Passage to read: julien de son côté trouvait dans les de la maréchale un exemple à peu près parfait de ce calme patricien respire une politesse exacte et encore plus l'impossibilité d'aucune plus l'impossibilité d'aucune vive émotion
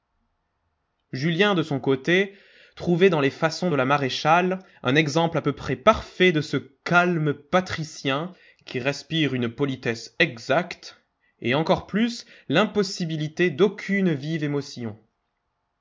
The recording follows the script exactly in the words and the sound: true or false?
false